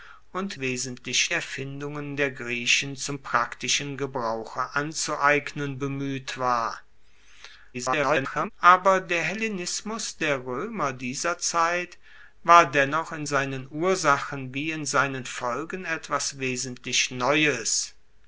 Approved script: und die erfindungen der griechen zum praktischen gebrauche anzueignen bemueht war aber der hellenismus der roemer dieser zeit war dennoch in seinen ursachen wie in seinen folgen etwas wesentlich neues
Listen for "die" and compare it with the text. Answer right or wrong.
wrong